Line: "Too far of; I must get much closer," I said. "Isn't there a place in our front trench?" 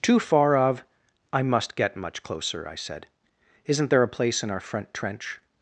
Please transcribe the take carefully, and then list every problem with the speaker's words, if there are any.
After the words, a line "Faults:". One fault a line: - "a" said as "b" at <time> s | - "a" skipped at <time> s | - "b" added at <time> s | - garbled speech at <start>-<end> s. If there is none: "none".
"Too far of; I must get much closer," I said. "Isn't there a place in our front trench?"
Faults:
none